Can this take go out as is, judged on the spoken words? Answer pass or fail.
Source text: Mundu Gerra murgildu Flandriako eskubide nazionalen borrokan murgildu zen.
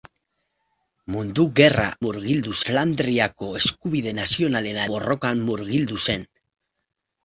pass